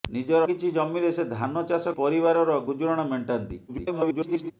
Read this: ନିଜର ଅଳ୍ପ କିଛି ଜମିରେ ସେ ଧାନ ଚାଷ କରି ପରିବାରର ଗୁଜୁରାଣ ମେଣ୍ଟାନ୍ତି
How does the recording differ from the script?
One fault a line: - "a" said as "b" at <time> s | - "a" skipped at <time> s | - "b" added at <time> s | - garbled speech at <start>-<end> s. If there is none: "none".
- "ଅଳ୍ପ" skipped at 0.4 s
- "କରି" skipped at 1.9 s
- garbled speech at 3.7-4.5 s